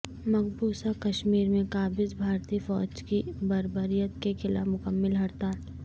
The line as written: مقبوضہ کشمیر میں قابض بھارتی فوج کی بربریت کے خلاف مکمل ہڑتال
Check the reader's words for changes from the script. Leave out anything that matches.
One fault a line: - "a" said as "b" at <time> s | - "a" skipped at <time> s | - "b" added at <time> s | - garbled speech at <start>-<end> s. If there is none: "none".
none